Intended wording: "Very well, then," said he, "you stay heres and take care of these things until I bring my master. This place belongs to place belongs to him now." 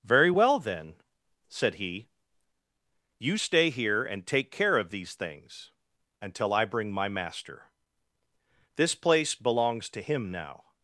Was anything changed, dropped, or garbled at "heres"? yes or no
yes